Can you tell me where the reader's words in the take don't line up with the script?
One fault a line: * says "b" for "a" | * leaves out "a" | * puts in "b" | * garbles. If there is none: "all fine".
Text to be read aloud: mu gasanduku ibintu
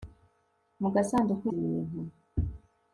all fine